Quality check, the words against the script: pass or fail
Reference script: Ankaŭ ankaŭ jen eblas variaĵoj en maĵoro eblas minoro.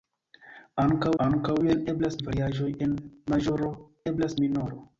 pass